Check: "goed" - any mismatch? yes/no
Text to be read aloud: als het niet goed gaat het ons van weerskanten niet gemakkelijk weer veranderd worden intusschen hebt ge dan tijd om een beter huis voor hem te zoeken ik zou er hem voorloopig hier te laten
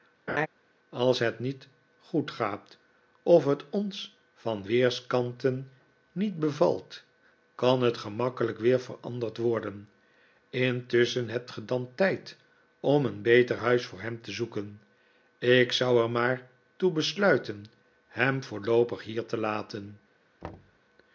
no